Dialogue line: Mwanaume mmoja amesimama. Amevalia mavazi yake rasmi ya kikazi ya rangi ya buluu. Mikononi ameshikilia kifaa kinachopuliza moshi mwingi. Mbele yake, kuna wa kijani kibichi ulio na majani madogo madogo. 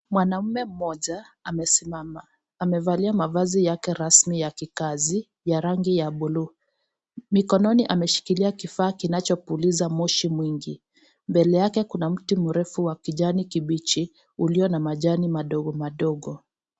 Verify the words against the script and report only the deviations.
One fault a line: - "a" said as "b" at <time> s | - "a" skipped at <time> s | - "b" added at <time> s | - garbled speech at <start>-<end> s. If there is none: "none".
- "mti mrefu" added at 12.1 s